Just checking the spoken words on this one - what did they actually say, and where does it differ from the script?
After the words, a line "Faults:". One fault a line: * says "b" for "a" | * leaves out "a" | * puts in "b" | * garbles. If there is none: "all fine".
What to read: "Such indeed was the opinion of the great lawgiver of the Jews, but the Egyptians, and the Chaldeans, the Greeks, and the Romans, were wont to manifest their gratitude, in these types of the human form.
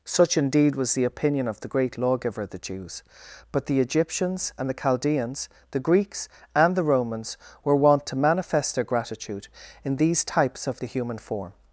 "Such indeed was the opinion of the great lawgiver of the Jews, but the Egyptians, and the Chaldeans, the Greeks, and the Romans, were wont to manifest their gratitude, in these types of the human form.
Faults:
all fine